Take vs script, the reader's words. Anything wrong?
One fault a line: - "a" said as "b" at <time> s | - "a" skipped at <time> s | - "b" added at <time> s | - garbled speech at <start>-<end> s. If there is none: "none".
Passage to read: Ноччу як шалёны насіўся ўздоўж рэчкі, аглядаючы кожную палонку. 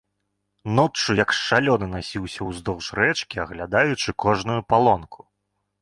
none